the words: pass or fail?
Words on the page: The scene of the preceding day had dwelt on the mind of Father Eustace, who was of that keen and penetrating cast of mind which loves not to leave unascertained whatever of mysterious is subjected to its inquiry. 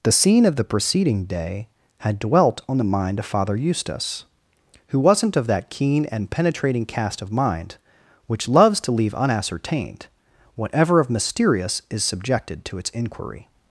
fail